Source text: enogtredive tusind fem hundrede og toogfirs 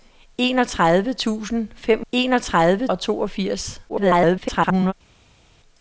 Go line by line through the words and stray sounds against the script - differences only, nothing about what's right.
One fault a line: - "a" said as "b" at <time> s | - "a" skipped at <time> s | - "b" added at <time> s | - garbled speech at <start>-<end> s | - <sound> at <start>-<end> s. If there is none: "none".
- "hundrede" said as "enogtredive" at 2.1 s
- garbled speech at 3.9-4.9 s